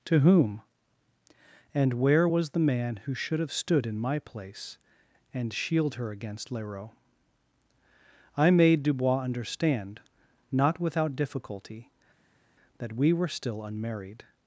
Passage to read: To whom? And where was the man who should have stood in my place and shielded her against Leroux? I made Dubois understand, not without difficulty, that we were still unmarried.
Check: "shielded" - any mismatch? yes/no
yes